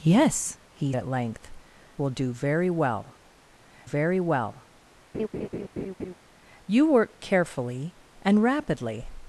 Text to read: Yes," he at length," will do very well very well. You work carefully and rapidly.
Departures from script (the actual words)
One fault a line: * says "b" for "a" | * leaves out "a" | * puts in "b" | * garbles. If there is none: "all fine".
all fine